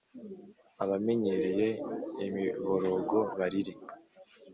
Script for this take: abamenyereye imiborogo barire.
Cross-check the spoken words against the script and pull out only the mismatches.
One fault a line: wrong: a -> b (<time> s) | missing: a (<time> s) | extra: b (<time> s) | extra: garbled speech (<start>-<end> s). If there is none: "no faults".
no faults